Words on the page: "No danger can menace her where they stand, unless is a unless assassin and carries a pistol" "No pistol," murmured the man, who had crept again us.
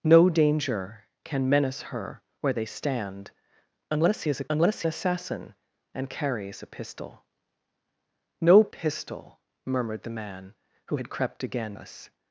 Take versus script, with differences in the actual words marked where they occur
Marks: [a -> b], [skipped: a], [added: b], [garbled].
"No danger can menace her where they stand, unless is a unless assassin and carries a pistol" "No pistol," murmured the man, who had crept again us.